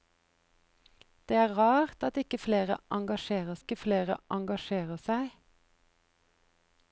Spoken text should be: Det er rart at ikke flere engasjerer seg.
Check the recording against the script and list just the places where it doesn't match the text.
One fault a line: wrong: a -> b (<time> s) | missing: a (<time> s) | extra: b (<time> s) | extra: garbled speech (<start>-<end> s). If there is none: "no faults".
extra: ikke flere engasjerer (3.6 s)